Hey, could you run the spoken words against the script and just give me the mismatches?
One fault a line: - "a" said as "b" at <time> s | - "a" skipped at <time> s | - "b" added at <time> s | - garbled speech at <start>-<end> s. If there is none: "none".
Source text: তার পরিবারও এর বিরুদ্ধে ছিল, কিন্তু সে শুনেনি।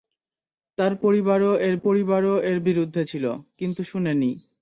- "পরিবারও এর" added at 1.8 s
- "সে" skipped at 3.8 s